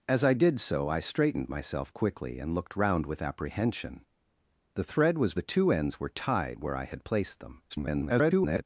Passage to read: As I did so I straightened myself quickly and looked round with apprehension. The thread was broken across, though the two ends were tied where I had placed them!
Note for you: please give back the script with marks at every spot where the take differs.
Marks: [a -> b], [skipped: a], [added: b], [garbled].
As I did so I straightened myself quickly and looked round with apprehension. The thread was [skipped: broken across, though] the two ends were tied where I had placed them! [garbled]